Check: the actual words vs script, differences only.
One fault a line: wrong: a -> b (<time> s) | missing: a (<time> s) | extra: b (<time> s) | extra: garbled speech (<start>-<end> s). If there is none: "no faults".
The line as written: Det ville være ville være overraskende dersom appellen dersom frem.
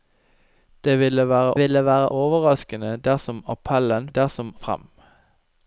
no faults